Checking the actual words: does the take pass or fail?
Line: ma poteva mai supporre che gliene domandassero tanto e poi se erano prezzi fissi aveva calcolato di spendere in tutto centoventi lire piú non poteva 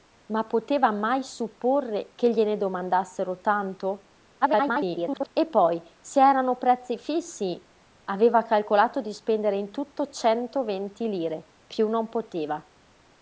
fail